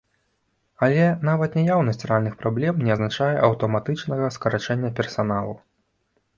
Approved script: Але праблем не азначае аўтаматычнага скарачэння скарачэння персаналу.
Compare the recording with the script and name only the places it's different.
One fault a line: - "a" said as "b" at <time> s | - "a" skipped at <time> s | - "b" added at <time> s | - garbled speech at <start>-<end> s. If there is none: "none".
- "нават наяўнасць рэальных" added at 1.3 s
- "скарачэння" skipped at 5.0 s